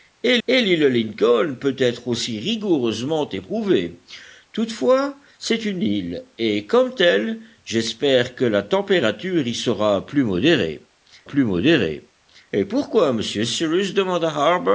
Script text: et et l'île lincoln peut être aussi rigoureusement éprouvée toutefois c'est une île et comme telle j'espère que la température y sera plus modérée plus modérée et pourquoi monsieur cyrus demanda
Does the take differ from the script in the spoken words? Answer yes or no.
no